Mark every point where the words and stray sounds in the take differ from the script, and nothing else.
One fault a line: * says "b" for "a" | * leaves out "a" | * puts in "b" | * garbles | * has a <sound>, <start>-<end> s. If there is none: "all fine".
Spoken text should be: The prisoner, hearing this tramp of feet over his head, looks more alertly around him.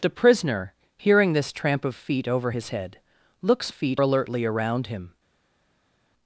* says "feet" for "more"